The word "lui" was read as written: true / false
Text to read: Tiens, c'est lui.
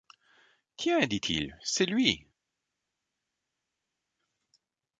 true